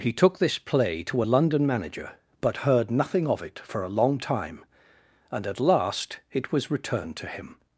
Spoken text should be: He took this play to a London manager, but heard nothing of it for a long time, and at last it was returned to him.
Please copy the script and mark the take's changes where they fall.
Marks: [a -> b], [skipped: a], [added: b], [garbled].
He took this play to a London manager, but heard nothing of it for a long time, and at last it was returned to him.